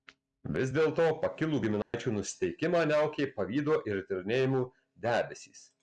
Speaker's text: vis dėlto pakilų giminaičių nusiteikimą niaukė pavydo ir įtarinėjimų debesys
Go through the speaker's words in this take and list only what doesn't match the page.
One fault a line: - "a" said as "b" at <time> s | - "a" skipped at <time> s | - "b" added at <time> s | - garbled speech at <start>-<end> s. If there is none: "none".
none